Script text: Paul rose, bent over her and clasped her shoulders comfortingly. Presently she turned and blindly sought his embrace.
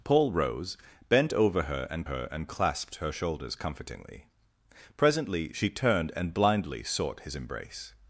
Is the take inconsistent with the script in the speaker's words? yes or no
yes